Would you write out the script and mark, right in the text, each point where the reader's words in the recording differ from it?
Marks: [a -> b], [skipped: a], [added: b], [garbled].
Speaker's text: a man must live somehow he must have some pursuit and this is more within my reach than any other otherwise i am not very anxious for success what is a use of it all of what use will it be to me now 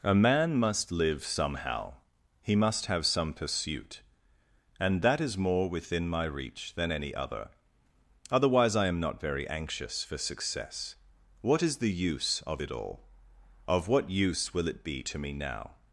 a man must live somehow he must have some pursuit and [this -> that] is more within my reach than any other otherwise i am not very anxious for success what is [a -> the] use of it all of what use will it be to me now